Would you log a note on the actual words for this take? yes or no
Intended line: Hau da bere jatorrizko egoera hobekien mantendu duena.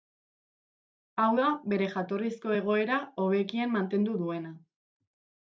no